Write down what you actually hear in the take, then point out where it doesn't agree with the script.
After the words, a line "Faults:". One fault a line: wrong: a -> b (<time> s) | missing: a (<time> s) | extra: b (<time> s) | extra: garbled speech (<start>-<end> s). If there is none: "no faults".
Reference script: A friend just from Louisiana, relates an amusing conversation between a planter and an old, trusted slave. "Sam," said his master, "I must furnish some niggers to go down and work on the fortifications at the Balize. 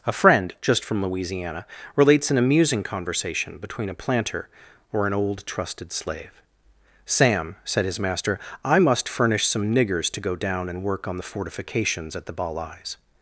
A friend just from Louisiana, relates an amusing conversation between a planter or an old, trusted slave. "Sam," said his master, "I must furnish some niggers to go down and work on the fortifications at the Balize.
Faults:
wrong: and -> or (4.9 s)